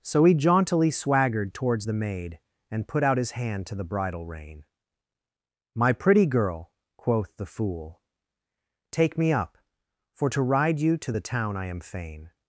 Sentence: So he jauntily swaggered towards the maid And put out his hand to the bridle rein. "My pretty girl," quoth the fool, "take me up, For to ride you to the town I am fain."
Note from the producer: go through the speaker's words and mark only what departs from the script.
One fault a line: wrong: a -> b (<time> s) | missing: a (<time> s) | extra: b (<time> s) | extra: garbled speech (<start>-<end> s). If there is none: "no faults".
no faults